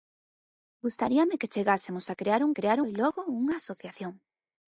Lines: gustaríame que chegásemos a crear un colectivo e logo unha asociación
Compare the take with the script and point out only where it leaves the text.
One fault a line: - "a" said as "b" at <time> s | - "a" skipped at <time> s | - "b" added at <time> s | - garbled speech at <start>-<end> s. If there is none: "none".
- "colectivo" said as "crear" at 2.5 s